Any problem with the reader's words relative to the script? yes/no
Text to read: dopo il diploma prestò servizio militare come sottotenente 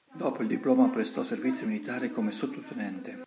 no